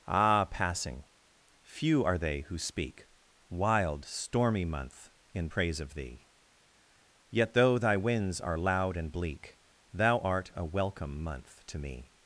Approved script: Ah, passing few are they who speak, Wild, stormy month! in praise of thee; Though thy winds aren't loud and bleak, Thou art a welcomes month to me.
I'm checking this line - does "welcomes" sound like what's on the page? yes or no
no